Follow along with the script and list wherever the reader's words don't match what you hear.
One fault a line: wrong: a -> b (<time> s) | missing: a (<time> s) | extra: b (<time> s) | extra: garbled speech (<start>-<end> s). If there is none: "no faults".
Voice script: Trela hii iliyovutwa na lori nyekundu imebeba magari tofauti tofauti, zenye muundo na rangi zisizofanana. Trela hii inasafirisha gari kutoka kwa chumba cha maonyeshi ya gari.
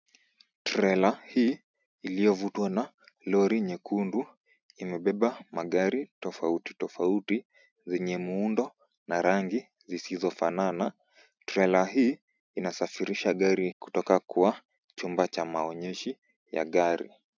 no faults